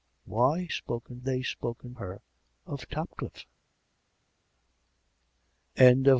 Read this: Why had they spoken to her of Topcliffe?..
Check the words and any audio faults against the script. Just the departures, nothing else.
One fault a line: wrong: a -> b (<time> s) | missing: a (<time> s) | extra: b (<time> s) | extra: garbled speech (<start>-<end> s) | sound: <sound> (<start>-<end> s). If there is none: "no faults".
wrong: had -> spoken (0.7 s)
missing: to (2.0 s)